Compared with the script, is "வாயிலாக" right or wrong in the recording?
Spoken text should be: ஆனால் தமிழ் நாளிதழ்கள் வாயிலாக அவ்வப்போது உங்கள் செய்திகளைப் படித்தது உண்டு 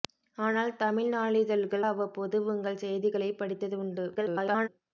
wrong